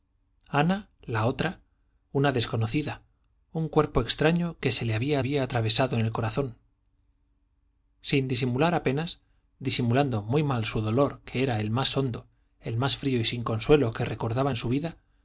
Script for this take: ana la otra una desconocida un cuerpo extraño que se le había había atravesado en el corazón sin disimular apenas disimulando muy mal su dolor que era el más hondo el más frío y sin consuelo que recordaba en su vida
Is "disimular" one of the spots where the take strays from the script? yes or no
no